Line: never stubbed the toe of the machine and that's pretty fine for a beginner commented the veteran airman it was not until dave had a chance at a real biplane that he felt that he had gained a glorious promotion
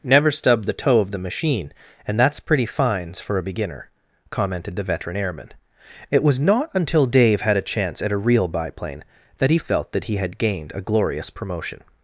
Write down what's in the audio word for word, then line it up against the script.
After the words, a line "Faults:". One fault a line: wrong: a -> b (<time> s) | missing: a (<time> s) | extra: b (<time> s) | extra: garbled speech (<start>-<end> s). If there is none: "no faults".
never stubbed the toe of the machine and that's pretty fines for a beginner commented the veteran airman it was not until dave had a chance at a real biplane that he felt that he had gained a glorious promotion
Faults:
wrong: fine -> fines (2.6 s)